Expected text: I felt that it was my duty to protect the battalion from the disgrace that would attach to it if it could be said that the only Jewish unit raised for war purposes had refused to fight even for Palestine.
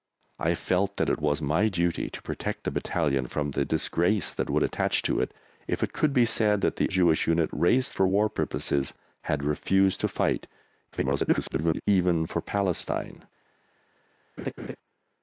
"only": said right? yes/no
no